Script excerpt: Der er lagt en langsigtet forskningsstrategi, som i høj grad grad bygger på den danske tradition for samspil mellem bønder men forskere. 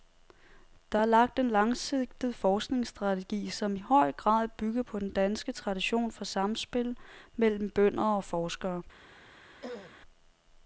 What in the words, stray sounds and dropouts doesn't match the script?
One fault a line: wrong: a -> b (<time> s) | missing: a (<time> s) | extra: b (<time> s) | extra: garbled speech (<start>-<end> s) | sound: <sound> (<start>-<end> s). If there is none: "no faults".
missing: grad (4.5 s)
wrong: men -> og (8.0 s)
sound: throat clearing (9.6-10.0 s)